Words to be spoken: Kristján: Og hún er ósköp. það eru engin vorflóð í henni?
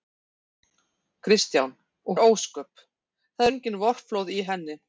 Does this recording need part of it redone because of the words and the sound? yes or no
yes